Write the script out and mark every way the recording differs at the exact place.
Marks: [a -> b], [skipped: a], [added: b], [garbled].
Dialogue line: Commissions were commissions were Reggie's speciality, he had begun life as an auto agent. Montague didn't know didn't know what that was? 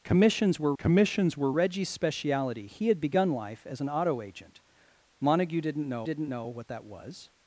Commissions were commissions were Reggie's speciality, he had begun life as an auto agent. Montague didn't know didn't know what that was?